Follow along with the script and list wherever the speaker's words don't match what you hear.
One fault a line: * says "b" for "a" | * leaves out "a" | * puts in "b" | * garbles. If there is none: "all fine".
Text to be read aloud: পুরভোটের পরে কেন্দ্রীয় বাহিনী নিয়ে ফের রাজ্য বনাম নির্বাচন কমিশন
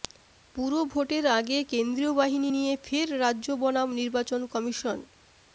* says "আগে" for "পরে"